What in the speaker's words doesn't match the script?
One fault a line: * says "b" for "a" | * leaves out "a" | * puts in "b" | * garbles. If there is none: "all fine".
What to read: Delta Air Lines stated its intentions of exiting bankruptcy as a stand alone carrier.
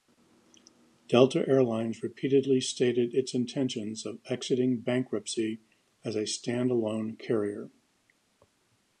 * puts in "repeatedly"